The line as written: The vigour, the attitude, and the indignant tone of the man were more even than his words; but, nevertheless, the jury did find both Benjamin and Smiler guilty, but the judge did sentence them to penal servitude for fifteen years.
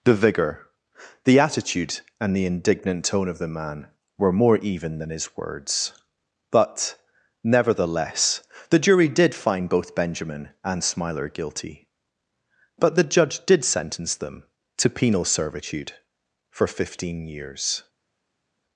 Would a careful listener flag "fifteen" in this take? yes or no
no